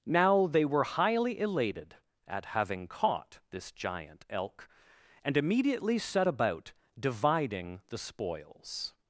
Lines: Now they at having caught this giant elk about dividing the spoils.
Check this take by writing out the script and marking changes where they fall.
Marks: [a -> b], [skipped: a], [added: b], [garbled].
Now they [added: were highly elated] at having caught this giant elk [added: and immediately set] about dividing the spoils.